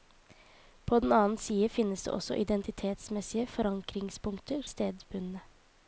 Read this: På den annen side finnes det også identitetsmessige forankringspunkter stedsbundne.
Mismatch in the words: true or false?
false